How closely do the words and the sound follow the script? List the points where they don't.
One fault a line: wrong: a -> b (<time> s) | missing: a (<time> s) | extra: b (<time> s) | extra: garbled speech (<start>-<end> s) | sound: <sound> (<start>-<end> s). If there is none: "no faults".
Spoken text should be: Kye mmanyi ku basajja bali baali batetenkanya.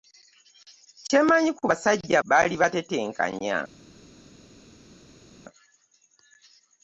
missing: bali (2.2 s)